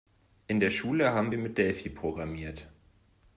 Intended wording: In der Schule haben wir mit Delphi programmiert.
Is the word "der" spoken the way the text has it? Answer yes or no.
yes